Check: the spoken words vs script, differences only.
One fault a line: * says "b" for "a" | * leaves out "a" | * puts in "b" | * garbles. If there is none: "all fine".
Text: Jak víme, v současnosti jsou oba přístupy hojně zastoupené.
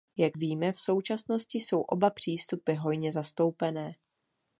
all fine